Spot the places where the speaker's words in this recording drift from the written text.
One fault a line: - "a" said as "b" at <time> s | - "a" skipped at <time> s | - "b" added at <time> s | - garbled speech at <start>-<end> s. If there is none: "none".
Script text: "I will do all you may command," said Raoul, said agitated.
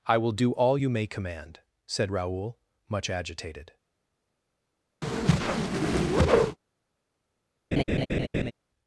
- "said" said as "much" at 2.9 s